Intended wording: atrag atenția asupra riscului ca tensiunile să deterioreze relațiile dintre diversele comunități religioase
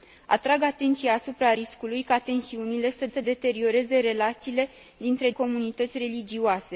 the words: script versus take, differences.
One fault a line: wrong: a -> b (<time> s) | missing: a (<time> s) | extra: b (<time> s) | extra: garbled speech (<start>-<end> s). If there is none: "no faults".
extra: să (3.1 s)
missing: diversele (5.3 s)